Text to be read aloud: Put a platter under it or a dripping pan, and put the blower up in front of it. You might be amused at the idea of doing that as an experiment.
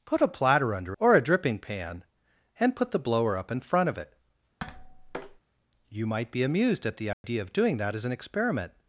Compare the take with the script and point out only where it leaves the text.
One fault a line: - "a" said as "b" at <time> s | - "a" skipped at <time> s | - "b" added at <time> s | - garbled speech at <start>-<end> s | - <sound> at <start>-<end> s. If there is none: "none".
- "it" skipped at 1.0 s
- tap at 4.6-5.4 s
- dropout at 7.1-7.2 s